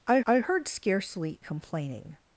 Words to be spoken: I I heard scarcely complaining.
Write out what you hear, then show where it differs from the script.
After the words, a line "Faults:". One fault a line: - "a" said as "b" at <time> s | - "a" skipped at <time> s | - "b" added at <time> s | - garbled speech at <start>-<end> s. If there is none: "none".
I I heard scarcely complaining.
Faults:
none